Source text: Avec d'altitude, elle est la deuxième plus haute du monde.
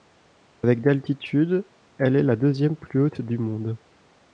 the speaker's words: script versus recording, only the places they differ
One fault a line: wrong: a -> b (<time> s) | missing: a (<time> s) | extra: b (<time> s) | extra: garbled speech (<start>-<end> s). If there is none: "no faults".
no faults